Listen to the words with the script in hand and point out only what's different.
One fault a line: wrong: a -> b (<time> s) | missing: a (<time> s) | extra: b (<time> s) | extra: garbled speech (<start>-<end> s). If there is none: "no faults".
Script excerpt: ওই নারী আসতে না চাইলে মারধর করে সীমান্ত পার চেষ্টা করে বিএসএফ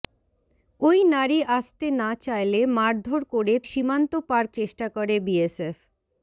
no faults